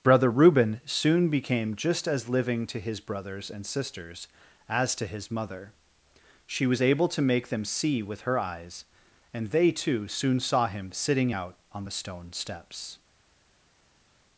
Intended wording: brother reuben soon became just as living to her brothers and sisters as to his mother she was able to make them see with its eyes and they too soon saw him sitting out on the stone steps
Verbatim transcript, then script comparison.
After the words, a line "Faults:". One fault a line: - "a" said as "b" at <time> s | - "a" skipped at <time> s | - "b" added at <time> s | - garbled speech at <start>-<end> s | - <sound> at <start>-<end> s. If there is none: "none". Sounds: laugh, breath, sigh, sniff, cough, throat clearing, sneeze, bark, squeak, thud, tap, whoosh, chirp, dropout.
brother reuben soon became just as living to his brothers and sisters as to his mother she was able to make them see with her eyes and they too soon saw him sitting out on the stone steps
Faults:
- "her" said as "his" at 2.8 s
- "its" said as "her" at 8.2 s